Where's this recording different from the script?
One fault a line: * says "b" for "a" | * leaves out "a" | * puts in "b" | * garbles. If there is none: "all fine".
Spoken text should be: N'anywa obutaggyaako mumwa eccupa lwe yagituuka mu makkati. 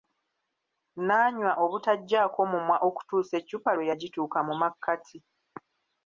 * puts in "okutuusa"